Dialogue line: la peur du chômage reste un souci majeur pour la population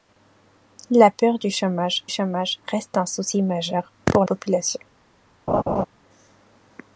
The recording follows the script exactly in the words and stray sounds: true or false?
false